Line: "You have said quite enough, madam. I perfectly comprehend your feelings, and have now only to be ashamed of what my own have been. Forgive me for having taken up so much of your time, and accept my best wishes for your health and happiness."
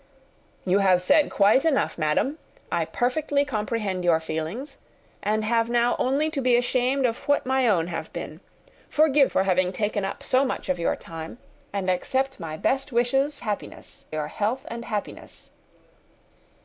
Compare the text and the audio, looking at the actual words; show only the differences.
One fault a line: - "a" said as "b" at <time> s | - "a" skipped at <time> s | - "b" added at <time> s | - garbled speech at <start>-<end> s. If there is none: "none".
- "me" skipped at 9.3 s
- "for" said as "happiness" at 13.4 s